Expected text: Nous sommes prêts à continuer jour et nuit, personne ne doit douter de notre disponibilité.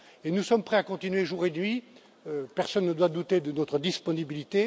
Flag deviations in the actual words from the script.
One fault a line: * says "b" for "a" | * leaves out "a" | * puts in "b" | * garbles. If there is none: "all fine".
all fine